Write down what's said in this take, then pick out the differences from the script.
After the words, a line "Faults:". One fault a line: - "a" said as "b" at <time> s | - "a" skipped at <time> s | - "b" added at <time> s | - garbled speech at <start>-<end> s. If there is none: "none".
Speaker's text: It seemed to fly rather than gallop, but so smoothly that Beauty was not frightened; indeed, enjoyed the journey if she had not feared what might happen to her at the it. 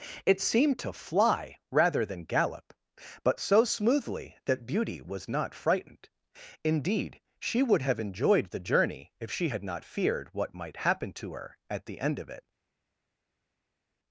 It seemed to fly rather than gallop, but so smoothly that Beauty was not frightened; indeed, she would have enjoyed the journey if she had not feared what might happen to her at the end of it.
Faults:
- "she would have" added at 7.4 s
- "end of" added at 12.0 s